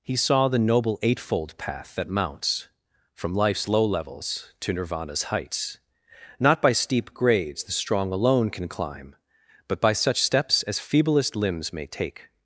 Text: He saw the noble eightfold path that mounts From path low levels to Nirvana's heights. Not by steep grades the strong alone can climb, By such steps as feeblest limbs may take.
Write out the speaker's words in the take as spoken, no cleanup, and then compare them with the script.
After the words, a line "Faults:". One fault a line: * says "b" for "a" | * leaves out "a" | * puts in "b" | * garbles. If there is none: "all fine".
He saw the noble eightfold path that mounts From life's low levels to Nirvana's heights. Not by steep grades the strong alone can climb, But by such steps as feeblest limbs may take.
Faults:
* says "life's" for "path"
* puts in "But"